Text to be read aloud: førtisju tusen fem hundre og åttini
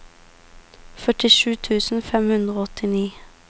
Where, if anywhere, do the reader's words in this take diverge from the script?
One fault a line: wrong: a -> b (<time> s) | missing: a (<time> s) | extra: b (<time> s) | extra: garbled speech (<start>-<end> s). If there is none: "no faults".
no faults